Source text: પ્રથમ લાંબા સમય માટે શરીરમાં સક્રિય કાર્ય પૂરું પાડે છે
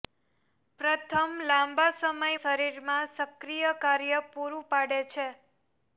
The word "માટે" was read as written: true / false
false